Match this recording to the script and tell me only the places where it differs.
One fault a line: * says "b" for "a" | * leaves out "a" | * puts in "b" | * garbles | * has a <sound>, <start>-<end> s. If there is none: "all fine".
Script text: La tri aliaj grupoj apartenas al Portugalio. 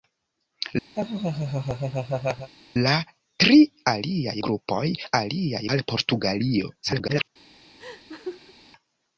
* has a laugh, 0.9-2.5 s
* says "aliaj" for "apartenas"
* garbles
* has a laugh, 7.8-8.5 s